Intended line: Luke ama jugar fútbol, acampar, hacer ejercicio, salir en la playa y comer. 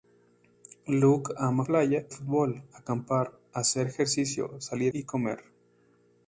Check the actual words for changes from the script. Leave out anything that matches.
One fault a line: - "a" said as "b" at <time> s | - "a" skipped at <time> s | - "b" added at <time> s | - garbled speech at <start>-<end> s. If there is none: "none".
- "jugar" said as "playa" at 1.6 s
- "en la playa" skipped at 4.9 s